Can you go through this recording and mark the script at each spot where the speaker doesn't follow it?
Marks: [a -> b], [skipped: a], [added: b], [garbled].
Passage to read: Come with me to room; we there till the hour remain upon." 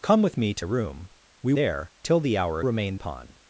Come with me to room; we there till the hour remain upon."